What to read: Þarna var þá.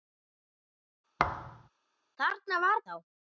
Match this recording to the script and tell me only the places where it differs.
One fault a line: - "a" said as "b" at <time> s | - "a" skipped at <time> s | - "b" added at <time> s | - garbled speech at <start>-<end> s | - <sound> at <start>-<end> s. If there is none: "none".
- thud at 1.2-1.7 s